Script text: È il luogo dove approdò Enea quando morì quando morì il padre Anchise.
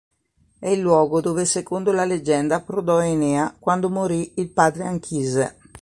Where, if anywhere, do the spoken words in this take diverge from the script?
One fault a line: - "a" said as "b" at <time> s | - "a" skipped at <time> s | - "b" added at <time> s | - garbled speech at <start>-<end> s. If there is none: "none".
- "secondo la leggenda" added at 1.4 s
- "quando morì" skipped at 4.3 s